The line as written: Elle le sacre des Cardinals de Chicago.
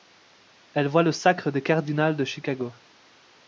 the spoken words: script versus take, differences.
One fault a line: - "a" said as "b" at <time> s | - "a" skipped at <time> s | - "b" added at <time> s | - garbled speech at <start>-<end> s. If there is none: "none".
- "voit" added at 0.9 s